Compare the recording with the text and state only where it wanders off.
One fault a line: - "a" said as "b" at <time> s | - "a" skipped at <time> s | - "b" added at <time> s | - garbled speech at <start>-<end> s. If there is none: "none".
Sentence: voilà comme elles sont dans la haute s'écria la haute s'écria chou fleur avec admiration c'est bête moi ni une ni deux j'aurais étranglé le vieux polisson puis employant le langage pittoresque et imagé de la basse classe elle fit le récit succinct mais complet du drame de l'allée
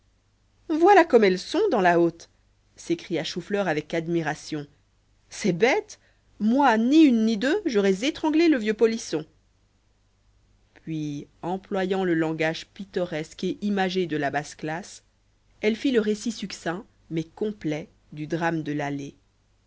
- "la haute s'écria" skipped at 3.2 s